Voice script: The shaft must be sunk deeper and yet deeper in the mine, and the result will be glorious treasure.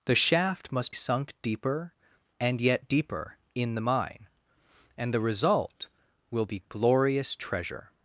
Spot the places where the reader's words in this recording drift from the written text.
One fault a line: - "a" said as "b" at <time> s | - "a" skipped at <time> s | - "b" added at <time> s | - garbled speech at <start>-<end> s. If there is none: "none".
- "be" skipped at 0.9 s